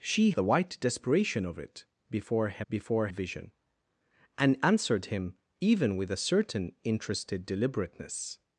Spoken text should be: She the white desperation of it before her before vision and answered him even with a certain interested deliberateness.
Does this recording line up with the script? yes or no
yes